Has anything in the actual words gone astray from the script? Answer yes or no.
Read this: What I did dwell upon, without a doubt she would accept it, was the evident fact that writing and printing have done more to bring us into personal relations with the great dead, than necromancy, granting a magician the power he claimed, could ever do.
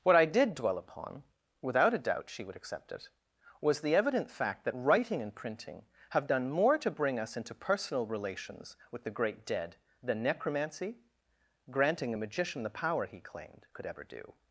no